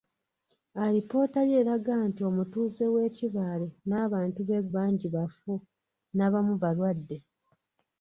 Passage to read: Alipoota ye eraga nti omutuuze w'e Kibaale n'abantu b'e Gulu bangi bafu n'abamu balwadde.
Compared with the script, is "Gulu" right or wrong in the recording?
wrong